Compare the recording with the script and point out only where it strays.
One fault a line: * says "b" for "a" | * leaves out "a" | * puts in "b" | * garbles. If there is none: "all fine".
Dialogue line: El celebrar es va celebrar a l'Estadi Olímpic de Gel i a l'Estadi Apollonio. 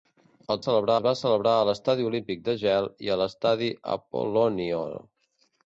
all fine